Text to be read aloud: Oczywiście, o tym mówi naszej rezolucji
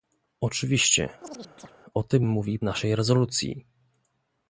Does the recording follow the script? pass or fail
pass